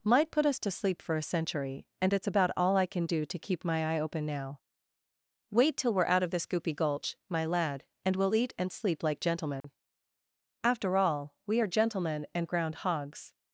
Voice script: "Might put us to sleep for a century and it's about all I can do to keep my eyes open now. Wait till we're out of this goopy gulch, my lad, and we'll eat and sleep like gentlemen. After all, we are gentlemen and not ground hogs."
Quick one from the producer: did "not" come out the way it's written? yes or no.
no